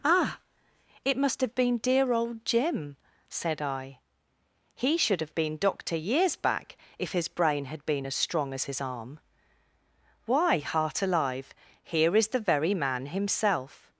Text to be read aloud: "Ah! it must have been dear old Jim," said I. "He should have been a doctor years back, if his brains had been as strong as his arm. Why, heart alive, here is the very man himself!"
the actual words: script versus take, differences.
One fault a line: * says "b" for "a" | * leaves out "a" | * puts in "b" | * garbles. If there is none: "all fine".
* leaves out "a"
* says "brain" for "brains"